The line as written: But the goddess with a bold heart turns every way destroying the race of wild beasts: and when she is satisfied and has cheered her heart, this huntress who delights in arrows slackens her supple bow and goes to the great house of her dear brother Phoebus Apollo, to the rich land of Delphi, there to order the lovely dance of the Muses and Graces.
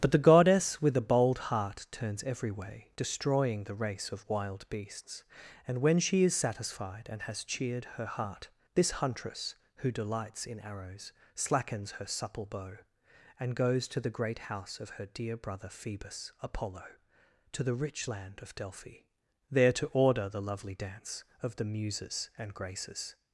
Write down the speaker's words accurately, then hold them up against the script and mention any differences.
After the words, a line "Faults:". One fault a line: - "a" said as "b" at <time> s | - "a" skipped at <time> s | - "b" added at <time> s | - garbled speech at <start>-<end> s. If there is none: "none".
But the goddess with a bold heart turns every way destroying the race of wild beasts: and when she is satisfied and has cheered her heart, this huntress who delights in arrows slackens her supple bow and goes to the great house of her dear brother Phoebus Apollo, to the rich land of Delphi, there to order the lovely dance of the Muses and Graces.
Faults:
none